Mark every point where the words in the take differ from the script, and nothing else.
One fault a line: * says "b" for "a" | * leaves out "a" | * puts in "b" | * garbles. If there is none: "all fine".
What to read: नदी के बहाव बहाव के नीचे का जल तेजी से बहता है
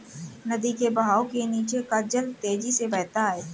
* leaves out "बहाव"